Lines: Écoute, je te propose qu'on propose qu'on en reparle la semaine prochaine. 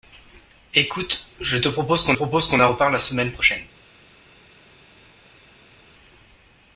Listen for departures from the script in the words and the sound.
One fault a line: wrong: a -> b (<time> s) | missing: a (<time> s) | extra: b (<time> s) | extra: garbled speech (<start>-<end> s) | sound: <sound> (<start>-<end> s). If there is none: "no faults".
no faults